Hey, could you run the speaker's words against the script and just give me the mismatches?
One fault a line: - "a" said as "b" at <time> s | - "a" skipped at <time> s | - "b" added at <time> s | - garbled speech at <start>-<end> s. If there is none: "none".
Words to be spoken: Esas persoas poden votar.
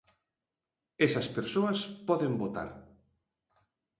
none